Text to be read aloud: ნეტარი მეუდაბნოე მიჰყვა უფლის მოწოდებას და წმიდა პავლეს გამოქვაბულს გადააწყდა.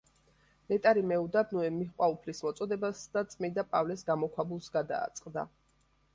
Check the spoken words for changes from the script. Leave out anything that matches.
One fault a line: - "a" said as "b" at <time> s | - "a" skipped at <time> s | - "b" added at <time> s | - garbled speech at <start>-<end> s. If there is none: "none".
none